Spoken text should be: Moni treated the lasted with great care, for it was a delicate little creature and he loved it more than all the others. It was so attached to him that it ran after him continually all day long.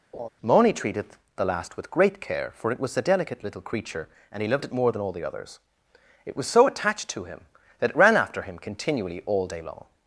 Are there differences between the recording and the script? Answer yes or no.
yes